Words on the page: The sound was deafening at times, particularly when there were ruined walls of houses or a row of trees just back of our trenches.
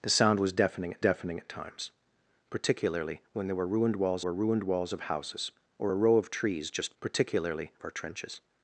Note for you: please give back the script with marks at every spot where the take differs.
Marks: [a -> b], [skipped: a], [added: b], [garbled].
The sound was deafening at [added: deafening at] times, particularly when there were ruined walls [added: were ruined walls] of houses or a row of trees just [back -> particularly] of our trenches.